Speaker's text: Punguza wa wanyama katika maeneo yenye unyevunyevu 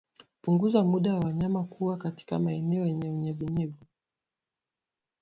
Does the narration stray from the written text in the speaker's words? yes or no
yes